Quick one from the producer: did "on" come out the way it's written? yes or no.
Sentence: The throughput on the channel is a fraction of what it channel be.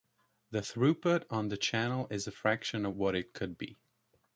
yes